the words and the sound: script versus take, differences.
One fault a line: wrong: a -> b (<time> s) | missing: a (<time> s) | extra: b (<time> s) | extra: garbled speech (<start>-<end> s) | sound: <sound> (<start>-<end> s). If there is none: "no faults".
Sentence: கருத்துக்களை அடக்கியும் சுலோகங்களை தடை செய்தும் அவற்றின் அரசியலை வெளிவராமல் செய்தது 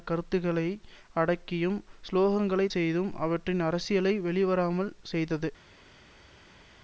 missing: தடை (2.7 s)